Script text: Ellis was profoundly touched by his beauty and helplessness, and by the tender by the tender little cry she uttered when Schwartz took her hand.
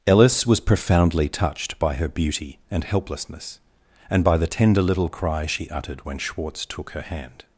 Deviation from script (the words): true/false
true